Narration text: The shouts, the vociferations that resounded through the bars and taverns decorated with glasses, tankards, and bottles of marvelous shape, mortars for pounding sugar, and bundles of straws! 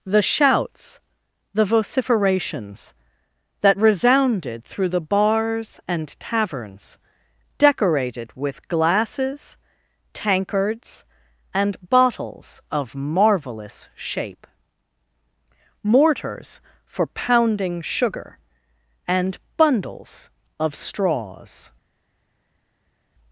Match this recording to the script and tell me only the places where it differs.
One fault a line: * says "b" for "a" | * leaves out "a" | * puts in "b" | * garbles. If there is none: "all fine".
all fine